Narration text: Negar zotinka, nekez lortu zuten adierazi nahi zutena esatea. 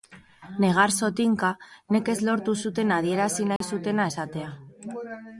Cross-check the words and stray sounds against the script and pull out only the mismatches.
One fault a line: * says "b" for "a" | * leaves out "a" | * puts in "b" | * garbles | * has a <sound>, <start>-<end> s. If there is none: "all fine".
* has a dropout, 3.6-3.6 s